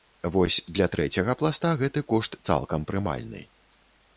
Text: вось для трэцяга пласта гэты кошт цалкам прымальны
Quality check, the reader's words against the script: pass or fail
pass